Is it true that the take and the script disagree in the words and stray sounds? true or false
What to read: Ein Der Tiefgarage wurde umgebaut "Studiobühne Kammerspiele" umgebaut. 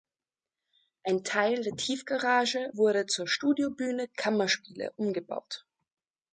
true